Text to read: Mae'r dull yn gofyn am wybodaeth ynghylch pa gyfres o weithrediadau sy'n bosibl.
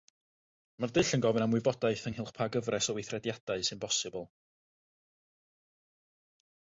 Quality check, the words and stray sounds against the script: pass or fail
pass